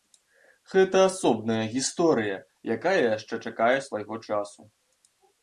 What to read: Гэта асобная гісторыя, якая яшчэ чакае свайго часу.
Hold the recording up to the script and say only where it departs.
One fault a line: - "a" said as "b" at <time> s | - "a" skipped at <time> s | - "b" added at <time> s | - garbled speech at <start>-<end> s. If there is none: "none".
none